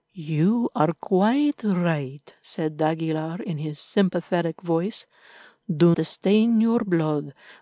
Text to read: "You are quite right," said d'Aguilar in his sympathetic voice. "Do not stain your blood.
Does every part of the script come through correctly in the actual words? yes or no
no